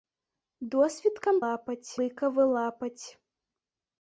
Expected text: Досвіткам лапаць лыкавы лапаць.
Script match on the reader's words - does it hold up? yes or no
yes